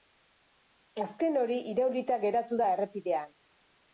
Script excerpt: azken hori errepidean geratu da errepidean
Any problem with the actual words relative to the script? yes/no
yes